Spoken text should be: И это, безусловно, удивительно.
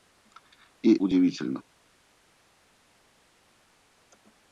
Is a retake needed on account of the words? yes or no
yes